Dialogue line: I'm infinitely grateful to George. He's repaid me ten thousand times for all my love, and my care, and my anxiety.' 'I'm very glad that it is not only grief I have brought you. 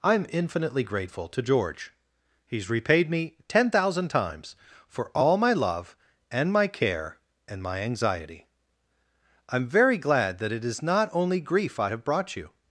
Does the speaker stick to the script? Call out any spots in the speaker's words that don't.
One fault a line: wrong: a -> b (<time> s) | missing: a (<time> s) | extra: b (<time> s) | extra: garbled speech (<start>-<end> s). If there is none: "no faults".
no faults